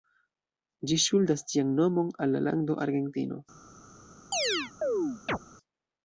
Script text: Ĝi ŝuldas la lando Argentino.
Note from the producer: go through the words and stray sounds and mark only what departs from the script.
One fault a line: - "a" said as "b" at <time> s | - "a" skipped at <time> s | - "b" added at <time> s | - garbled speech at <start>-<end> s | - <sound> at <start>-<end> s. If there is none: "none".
- "ĝian nomon al" added at 1.5 s
- chirp at 4.3-5.4 s